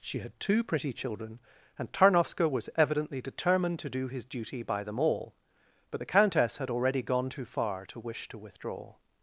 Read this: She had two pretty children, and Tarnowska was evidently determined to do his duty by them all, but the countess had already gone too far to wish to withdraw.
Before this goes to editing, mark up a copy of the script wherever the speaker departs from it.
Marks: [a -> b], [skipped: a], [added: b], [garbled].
She had two pretty children, and Tarnowska was evidently determined to do his duty by them all, but the countess had already gone too far to wish to withdraw.